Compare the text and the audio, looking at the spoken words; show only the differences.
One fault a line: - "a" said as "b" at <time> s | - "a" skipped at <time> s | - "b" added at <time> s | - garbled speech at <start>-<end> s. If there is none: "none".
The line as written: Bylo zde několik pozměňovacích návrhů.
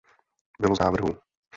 - "zde několik pozměňovacích" skipped at 0.8 s